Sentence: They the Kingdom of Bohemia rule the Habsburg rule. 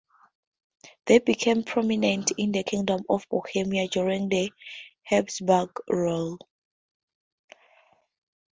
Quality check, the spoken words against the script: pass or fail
fail